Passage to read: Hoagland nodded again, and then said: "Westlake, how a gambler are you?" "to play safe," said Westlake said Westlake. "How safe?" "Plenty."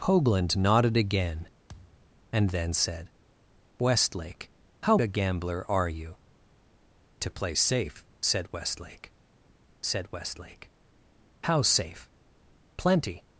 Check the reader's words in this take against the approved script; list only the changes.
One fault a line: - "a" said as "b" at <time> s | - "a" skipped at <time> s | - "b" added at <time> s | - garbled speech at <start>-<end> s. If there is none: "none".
none